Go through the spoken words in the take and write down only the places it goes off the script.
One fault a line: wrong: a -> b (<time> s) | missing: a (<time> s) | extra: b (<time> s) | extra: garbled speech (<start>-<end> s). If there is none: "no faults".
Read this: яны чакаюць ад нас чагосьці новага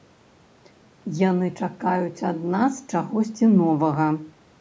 no faults